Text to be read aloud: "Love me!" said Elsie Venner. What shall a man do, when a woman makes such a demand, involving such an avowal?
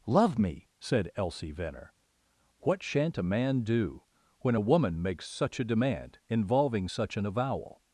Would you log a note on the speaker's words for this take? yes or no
yes